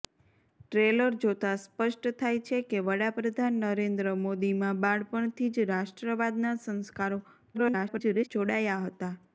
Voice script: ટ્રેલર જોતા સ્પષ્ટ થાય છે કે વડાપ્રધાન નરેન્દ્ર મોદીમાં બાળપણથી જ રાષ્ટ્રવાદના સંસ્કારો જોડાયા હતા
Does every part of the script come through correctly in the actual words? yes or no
no